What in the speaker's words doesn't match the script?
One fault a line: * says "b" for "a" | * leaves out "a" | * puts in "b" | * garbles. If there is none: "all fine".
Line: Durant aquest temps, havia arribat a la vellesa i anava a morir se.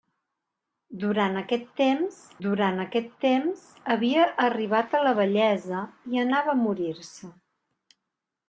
* puts in "durant aquest temps"